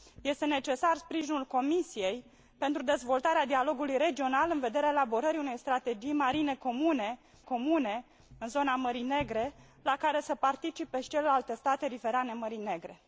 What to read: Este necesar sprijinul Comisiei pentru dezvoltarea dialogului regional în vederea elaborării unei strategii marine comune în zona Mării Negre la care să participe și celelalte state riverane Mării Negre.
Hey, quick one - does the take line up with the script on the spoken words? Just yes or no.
no